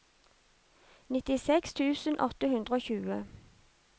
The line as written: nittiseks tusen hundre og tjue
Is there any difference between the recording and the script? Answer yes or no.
yes